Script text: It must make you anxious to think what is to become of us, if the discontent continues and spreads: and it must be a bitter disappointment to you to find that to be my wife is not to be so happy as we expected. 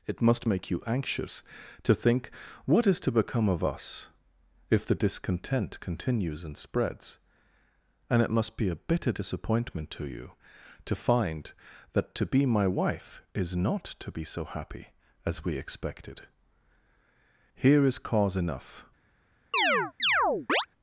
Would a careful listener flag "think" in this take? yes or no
no